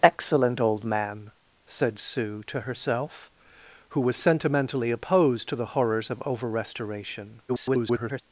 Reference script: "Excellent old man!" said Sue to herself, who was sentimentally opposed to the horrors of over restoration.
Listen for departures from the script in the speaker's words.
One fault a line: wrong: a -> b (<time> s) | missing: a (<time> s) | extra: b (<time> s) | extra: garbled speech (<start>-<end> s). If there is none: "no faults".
extra: garbled speech (7.5-8.2 s)